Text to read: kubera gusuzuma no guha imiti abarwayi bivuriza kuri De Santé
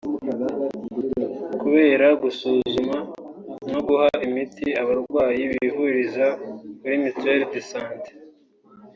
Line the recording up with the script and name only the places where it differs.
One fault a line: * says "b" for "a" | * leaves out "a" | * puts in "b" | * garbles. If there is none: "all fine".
* puts in "Mutuelle"